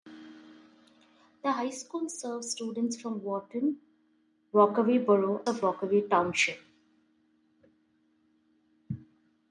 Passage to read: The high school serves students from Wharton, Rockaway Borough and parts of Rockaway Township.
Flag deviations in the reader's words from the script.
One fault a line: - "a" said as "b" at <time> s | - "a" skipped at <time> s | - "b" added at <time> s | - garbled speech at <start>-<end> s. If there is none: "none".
- "and parts" skipped at 5.5 s